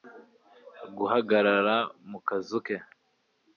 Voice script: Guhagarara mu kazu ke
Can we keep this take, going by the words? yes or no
yes